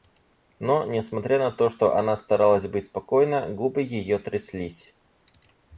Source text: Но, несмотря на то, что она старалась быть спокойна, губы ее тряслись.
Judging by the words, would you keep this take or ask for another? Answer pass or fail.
pass